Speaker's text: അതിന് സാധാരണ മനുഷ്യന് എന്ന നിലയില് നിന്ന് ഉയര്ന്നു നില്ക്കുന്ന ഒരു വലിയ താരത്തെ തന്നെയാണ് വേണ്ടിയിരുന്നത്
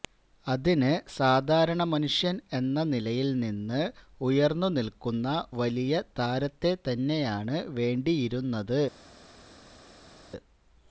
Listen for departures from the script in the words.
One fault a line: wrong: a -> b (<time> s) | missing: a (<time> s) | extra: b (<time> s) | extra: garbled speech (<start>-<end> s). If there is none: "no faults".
missing: ഒരു (5.3 s)